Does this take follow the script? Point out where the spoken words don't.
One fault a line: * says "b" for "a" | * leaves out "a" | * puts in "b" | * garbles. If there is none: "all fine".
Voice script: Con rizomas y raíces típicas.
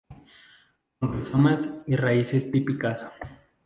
all fine